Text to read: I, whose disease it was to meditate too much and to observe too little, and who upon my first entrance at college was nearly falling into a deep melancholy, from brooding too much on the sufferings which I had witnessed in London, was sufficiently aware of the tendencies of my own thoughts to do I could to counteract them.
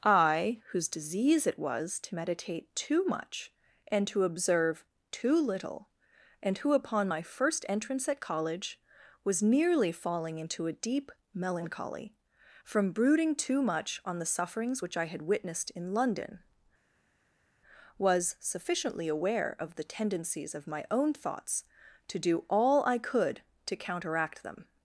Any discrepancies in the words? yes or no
yes